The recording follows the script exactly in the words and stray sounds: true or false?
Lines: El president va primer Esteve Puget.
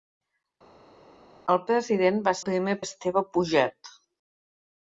true